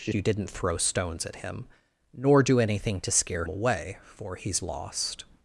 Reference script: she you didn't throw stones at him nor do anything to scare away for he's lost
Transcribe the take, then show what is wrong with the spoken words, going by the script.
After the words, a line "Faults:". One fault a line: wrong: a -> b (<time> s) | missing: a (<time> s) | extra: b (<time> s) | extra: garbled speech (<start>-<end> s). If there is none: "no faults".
she you didn't throw stones at him nor do anything to scare away for he's lost
Faults:
no faults